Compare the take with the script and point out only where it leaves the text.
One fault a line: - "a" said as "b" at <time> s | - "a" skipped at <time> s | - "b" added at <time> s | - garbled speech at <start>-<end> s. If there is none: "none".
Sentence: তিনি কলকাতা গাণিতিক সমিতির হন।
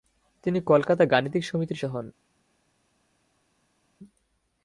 none